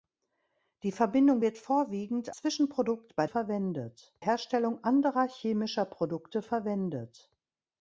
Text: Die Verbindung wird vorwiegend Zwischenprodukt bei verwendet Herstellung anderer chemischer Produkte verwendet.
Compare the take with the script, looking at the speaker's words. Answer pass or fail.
pass